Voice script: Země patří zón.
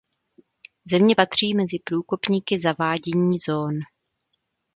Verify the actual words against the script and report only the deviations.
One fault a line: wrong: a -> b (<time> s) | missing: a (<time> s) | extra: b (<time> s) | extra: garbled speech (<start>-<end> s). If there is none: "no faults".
extra: mezi průkopníky zavádění (1.5 s)